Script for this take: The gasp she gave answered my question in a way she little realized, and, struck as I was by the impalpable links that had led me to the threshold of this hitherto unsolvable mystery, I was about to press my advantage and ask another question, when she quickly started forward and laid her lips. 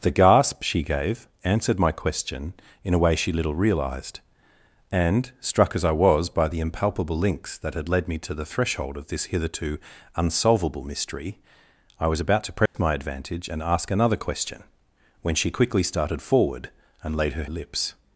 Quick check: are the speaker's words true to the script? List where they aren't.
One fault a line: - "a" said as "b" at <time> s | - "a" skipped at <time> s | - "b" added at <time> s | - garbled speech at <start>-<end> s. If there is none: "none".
none